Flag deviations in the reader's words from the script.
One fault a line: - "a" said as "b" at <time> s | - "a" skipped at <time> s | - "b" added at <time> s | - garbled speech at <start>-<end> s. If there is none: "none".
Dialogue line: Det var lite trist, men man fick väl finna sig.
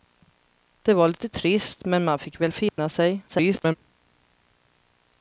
- garbled speech at 3.3-3.8 s